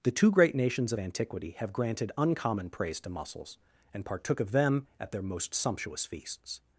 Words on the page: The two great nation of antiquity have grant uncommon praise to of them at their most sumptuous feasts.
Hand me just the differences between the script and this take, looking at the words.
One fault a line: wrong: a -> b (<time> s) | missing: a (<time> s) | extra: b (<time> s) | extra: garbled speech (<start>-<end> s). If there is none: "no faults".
wrong: nation -> nations (0.6 s)
wrong: grant -> granted (1.7 s)
extra: mussels and partook (3.1 s)